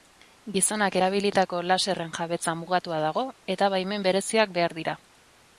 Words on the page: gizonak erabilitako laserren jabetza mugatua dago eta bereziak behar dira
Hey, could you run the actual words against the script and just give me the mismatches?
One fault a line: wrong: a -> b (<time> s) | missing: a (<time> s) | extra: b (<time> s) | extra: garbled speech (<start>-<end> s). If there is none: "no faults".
extra: baimen (3.8 s)